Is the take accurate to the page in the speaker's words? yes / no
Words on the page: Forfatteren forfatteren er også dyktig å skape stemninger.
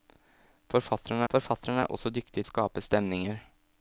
yes